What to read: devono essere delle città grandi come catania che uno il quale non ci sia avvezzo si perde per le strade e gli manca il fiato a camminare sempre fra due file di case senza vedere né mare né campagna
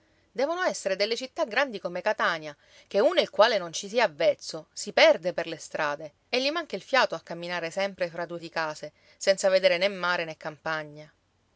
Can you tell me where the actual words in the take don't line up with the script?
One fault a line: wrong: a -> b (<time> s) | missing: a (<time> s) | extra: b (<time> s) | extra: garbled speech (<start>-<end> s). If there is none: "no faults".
missing: file (8.4 s)